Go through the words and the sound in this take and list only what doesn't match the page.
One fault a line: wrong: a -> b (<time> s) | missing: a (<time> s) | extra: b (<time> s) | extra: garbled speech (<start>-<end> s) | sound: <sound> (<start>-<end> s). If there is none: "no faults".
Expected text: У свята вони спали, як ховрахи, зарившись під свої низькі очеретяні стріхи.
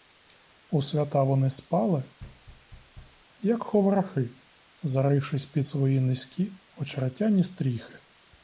sound: thud (2.2-3.3 s)